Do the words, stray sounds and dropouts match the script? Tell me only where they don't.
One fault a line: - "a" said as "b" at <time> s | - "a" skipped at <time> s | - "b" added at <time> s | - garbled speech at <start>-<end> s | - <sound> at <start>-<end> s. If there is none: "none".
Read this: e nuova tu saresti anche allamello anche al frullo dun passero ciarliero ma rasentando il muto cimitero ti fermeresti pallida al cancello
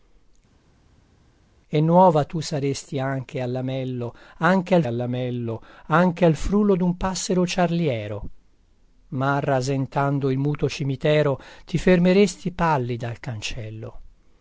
- "allamello anche al" added at 4.9 s